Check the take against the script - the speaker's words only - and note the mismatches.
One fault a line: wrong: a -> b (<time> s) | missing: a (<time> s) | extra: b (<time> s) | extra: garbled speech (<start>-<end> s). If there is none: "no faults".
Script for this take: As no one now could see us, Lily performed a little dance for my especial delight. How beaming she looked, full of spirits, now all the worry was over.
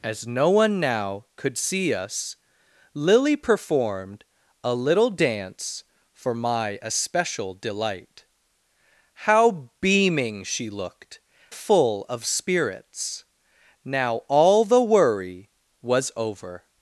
no faults